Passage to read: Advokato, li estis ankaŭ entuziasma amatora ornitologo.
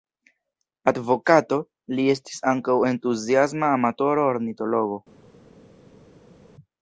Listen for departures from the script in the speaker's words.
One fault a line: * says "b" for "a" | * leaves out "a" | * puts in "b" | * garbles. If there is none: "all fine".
all fine